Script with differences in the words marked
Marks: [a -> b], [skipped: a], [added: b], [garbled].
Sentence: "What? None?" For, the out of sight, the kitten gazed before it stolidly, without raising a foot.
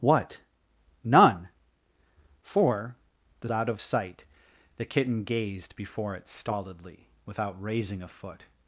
"What? None?" For, the out of sight, the kitten gazed before it stolidly, without raising a foot.